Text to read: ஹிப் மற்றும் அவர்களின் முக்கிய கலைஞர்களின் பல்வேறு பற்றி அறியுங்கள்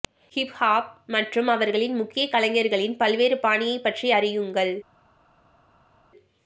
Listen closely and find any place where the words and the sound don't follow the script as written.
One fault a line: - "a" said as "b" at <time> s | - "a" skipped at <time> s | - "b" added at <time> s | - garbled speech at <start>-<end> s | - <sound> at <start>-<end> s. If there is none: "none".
- "ஹாப்" added at 0.5 s
- "பாணியைப்" added at 3.4 s